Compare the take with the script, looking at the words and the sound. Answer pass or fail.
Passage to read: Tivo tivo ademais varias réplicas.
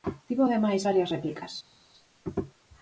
fail